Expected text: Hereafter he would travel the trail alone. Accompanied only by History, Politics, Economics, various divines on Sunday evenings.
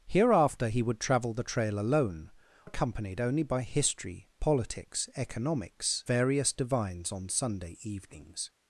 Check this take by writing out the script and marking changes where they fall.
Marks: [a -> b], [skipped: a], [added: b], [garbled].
Hereafter he would travel the trail alone. Accompanied only by History, Politics, Economics, various divines on Sunday evenings.